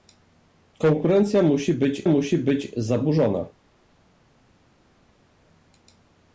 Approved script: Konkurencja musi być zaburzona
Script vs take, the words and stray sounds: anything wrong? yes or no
yes